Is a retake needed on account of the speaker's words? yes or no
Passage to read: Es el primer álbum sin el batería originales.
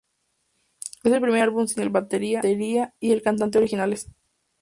yes